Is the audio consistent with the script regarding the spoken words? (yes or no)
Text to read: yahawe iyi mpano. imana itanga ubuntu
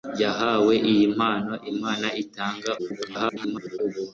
no